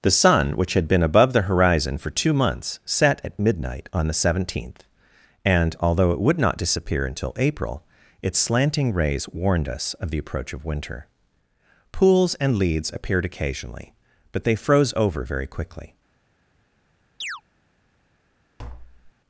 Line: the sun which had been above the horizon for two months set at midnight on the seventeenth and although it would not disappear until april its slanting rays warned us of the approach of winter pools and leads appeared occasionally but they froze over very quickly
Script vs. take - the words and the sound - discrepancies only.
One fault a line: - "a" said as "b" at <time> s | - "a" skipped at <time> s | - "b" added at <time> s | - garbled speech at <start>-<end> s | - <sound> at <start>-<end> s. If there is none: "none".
- chirp at 17.2-17.4 s
- tap at 18.6-19.1 s